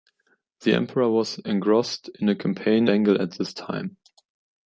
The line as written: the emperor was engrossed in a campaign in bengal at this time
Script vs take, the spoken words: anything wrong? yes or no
yes